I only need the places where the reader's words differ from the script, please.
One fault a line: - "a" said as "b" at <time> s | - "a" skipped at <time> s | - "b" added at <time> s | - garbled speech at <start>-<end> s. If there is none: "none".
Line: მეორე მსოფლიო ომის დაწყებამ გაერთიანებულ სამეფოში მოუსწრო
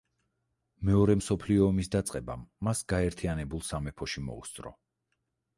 - "მას" added at 2.7 s